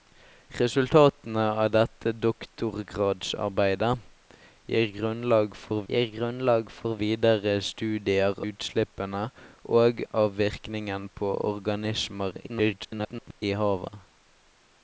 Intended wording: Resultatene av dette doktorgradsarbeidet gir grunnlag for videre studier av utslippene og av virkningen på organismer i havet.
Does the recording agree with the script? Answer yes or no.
no